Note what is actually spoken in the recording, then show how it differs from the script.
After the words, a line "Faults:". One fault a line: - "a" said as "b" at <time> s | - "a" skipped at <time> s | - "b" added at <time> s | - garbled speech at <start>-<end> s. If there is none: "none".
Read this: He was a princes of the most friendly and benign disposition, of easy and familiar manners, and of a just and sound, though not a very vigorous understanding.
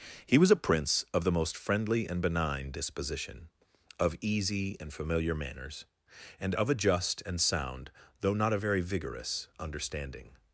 He was a prince of the most friendly and benign disposition, of easy and familiar manners, and of a just and sound, though not a very vigorous understanding.
Faults:
- "princes" said as "prince" at 0.6 s